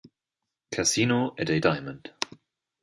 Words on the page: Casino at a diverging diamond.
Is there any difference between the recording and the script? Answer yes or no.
yes